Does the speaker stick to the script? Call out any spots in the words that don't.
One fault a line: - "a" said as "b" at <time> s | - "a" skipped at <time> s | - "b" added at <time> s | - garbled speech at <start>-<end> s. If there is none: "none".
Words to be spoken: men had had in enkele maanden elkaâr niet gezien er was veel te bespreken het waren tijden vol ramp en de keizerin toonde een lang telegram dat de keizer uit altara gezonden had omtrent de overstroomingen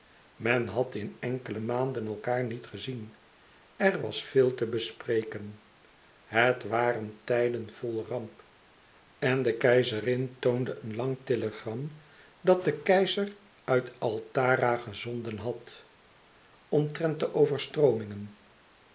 - "had" skipped at 0.9 s